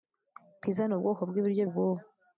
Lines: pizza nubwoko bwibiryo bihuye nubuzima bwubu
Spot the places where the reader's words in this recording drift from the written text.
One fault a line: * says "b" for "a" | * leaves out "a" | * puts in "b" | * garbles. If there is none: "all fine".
* leaves out "bihuye nubuzima"